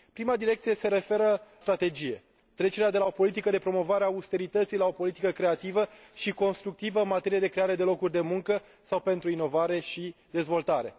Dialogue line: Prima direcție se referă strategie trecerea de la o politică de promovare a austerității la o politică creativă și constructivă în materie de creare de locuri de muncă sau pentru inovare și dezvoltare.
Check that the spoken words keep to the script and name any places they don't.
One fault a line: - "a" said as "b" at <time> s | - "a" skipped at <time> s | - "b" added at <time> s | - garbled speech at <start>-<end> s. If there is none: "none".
none